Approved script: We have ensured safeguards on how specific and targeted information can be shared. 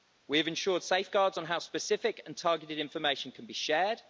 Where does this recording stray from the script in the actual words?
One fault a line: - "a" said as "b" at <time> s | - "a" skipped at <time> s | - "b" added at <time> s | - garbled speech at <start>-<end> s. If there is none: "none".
none